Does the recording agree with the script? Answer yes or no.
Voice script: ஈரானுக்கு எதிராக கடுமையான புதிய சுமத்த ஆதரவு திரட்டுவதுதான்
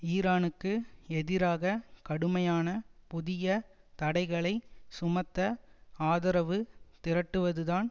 no